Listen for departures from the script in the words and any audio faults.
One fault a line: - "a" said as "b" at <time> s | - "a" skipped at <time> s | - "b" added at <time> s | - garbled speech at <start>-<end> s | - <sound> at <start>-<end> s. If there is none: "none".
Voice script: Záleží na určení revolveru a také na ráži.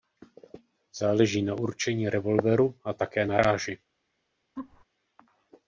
- laugh at 4.6-4.8 s